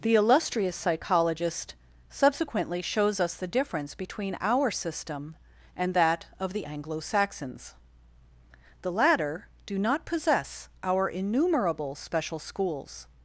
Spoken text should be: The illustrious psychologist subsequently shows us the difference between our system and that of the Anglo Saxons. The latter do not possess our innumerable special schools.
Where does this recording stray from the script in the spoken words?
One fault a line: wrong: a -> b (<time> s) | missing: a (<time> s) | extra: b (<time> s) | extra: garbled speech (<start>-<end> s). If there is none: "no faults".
no faults